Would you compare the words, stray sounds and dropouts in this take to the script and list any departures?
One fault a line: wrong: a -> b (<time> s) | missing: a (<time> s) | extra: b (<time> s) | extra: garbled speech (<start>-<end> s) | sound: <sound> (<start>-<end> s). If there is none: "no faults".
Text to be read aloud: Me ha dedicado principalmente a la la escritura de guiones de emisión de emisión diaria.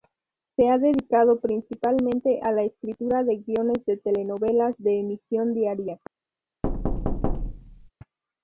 wrong: Me -> Se (0.6 s)
missing: la (2.6 s)
wrong: emisión -> telenovelas (4.0 s)
sound: thud (6.6-7.9 s)